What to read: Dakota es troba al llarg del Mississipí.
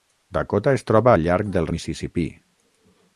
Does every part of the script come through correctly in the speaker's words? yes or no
yes